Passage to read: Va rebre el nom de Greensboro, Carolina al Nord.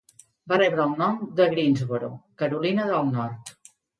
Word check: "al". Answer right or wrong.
wrong